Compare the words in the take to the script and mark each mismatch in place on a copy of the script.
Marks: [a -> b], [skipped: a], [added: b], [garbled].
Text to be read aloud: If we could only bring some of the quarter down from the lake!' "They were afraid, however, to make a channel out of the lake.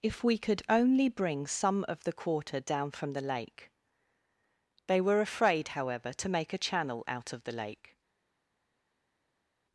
If we could only bring some of the quarter down from the lake!' "They were afraid, however, to make a channel out of the lake.